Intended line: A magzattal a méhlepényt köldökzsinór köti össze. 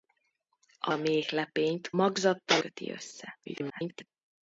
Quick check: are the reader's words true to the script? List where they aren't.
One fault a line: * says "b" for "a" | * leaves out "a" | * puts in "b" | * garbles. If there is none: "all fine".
* leaves out "magzattal"
* says "magzattal" for "köldökzsinór"
* garbles